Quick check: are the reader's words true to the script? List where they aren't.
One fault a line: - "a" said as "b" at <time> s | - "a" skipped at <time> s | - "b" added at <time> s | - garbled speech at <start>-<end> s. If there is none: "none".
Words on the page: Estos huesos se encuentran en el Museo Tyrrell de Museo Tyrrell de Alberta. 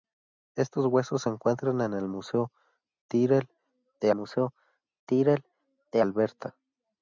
none